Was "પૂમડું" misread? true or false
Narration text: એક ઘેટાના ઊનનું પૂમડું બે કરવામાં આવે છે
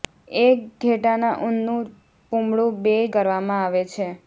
false